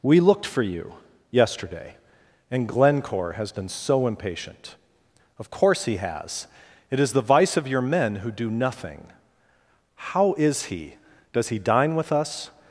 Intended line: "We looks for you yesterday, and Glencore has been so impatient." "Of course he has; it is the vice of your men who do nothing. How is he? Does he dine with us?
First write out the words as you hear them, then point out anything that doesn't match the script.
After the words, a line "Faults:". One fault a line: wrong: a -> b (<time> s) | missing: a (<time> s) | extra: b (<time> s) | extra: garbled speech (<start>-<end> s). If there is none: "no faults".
"We looked for you yesterday, and Glencore has been so impatient." "Of course he has; it is the vice of your men who do nothing. How is he? Does he dine with us?
Faults:
wrong: looks -> looked (0.2 s)